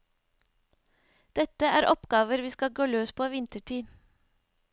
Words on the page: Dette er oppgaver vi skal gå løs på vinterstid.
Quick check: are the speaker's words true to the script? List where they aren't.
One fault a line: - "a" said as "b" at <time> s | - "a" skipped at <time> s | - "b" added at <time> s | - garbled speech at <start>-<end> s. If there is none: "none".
none